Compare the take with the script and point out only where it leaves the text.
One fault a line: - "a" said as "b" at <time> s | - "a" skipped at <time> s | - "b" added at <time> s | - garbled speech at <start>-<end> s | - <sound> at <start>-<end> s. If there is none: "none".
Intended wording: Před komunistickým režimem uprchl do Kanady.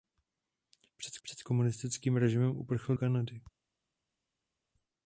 - "před" added at 1.2 s
- "do" skipped at 2.9 s